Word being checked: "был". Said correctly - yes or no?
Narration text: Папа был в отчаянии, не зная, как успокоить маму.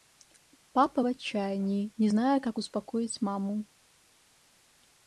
no